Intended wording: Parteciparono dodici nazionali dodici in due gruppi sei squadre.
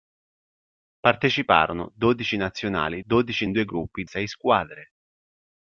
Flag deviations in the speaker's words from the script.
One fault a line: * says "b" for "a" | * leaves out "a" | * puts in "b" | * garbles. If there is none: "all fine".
all fine